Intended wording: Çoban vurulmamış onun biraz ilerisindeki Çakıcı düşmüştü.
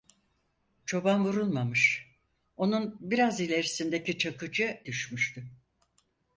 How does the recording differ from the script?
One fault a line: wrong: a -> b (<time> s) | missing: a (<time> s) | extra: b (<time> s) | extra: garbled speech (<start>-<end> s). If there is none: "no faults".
no faults